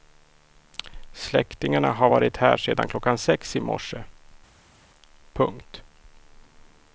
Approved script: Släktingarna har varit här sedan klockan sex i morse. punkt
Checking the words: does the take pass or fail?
pass